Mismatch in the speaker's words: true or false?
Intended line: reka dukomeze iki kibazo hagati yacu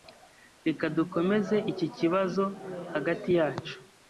false